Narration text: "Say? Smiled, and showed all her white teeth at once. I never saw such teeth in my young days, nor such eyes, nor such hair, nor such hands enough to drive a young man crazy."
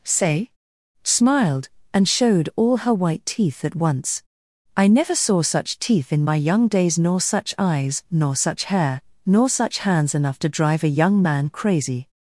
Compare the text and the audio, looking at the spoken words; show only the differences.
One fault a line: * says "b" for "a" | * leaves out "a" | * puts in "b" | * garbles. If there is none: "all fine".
all fine